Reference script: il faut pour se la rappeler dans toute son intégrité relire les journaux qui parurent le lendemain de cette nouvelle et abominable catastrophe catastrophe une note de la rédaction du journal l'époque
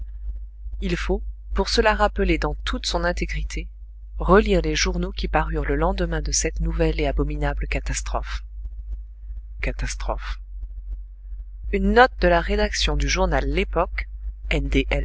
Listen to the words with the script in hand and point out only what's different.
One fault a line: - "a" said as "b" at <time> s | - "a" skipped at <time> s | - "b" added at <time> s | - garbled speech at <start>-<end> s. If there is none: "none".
none